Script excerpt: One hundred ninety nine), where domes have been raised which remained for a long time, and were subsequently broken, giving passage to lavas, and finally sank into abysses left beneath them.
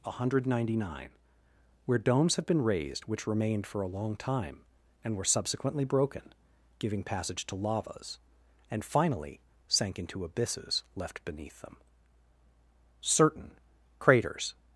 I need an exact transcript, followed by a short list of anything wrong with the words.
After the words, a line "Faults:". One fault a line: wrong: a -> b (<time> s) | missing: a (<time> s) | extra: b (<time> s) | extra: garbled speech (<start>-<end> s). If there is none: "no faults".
One hundred ninety nine), where domes have been raised which remained for a long time, and were subsequently broken, giving passage to lavas, and finally sank into abysses left beneath them. Certain, craters
Faults:
extra: Certain craters (13.0 s)